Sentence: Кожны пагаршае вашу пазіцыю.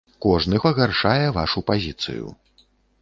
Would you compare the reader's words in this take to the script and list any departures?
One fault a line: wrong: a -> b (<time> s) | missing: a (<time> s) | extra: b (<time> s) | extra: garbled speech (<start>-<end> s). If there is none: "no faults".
no faults